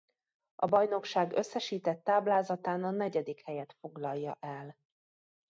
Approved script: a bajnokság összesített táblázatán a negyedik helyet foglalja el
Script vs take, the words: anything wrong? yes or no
no